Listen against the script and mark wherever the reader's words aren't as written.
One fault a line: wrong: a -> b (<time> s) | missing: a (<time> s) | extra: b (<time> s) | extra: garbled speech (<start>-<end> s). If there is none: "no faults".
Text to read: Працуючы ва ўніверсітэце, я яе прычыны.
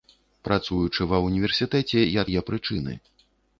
no faults